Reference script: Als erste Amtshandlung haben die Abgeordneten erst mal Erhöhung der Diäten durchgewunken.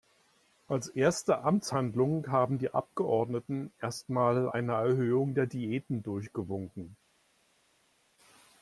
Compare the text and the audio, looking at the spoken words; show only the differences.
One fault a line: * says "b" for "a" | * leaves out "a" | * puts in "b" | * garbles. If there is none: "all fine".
* puts in "eine"